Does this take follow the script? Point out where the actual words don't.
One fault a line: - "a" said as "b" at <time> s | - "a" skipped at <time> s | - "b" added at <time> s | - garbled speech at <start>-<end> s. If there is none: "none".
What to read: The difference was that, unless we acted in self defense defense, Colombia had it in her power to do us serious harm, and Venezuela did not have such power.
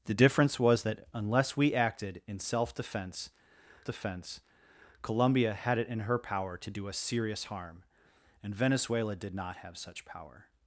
none